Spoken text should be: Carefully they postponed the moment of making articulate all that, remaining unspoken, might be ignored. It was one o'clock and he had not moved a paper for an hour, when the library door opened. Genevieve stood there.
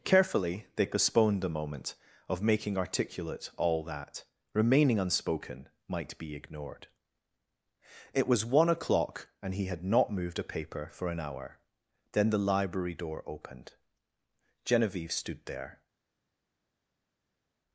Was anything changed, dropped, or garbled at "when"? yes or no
yes